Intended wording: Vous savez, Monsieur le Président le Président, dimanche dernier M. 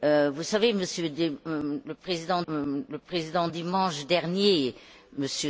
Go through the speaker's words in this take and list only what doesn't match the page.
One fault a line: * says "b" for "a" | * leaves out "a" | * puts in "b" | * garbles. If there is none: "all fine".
all fine